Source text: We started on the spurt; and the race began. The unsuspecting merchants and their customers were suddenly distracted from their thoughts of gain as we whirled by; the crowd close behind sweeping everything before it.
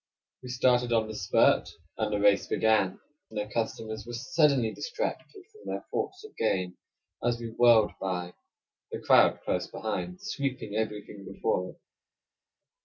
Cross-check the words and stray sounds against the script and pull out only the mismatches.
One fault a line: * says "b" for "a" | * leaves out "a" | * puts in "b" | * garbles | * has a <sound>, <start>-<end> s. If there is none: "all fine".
* leaves out "The unsuspecting merchants"